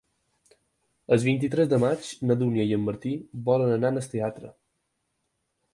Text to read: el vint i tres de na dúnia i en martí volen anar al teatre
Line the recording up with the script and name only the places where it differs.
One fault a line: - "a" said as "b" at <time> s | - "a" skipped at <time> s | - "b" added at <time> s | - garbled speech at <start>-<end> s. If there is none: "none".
- "maig" added at 1.8 s